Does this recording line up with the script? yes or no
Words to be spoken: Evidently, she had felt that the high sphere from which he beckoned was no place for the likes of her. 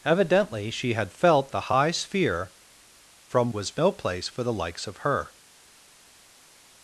no